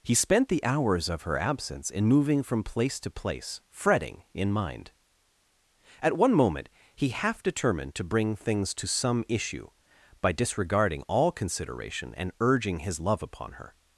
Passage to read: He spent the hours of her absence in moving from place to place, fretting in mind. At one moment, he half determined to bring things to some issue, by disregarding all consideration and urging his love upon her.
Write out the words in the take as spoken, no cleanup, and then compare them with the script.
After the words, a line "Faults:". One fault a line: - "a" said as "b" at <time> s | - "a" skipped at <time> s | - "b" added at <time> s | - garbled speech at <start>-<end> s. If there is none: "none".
He spent the hours of her absence in moving from place to place, fretting in mind. At one moment, he half determined to bring things to some issue, by disregarding all consideration and urging his love upon her.
Faults:
none